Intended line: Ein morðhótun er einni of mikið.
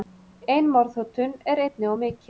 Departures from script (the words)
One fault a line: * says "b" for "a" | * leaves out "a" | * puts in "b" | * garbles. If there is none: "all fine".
all fine